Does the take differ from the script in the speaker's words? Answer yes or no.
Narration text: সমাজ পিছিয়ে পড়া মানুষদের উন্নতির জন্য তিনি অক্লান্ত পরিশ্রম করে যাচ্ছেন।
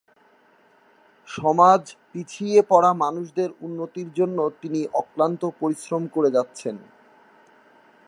no